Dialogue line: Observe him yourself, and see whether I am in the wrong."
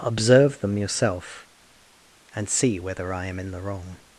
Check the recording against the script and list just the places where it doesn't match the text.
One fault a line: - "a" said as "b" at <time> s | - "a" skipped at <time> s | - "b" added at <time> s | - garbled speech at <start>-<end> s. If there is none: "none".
- "him" said as "them" at 0.6 s